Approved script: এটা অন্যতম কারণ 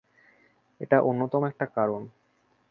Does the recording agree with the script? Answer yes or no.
no